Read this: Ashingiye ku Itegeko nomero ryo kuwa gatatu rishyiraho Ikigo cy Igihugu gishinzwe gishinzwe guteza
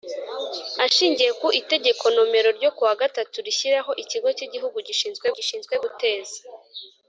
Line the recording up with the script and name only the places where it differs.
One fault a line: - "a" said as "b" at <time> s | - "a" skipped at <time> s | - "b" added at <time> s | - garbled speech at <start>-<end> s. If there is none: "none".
none